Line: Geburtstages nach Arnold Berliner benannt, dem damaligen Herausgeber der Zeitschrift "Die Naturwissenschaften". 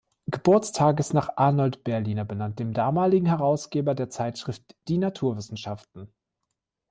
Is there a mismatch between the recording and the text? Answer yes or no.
no